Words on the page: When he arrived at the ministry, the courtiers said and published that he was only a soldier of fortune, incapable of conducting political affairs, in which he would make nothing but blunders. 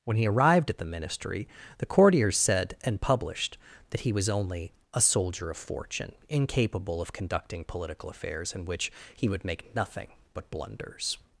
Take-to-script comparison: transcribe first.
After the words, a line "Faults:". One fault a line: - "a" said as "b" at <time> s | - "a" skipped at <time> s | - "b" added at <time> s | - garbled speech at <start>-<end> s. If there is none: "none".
When he arrived at the ministry, the courtiers said and published that he was only a soldier of fortune, incapable of conducting political affairs, in which he would make nothing but blunders.
Faults:
none